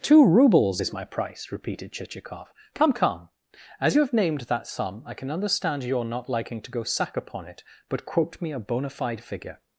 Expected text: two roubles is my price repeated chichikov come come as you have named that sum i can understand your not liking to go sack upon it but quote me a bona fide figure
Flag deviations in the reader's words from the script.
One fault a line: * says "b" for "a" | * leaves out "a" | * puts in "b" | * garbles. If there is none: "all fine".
all fine